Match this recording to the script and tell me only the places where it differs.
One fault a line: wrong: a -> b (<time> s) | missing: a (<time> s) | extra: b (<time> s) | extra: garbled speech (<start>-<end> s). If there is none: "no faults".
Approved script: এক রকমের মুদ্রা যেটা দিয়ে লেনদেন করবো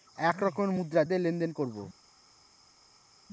missing: যেটা (1.0 s)